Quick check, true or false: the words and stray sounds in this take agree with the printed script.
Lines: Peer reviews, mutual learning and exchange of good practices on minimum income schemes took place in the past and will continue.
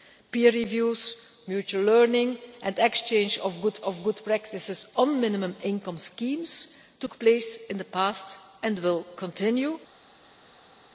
false